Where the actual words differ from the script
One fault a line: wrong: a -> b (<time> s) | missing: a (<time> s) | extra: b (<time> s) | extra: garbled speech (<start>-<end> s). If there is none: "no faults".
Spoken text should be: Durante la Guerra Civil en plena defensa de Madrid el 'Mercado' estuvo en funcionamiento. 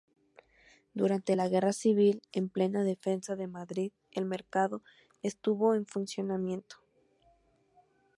no faults